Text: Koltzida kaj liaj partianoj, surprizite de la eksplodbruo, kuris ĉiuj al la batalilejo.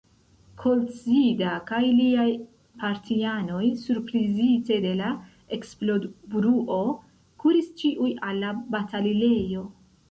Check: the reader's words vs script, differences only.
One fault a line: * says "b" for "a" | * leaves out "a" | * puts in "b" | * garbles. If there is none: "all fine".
all fine